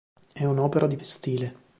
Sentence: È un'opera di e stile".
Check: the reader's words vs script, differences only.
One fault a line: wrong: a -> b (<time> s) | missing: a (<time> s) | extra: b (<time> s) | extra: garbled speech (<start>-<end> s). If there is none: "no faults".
no faults